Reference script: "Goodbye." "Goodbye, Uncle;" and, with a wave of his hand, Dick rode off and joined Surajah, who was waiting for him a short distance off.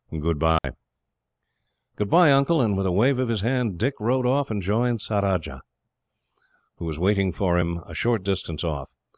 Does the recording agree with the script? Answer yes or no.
yes